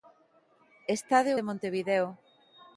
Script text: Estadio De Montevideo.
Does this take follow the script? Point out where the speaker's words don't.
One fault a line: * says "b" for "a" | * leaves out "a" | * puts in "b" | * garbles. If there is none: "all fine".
all fine